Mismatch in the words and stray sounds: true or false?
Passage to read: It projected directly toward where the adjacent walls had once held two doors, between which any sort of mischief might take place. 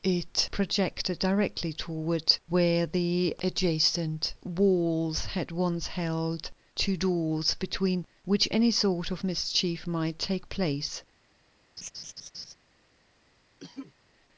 true